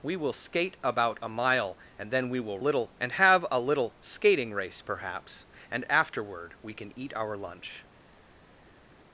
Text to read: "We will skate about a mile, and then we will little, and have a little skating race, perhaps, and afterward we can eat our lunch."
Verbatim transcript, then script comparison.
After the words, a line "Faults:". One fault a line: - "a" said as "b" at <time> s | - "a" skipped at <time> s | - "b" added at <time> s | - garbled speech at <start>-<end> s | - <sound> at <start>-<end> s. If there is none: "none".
"We will skate about a mile, and then we will little, and have a little skating race, perhaps, and afterward we can eat our lunch."
Faults:
none